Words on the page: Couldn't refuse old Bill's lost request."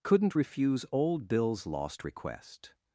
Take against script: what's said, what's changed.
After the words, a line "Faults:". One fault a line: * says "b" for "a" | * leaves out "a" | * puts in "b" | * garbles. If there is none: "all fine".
Couldn't refuse old Bill's lost request."
Faults:
all fine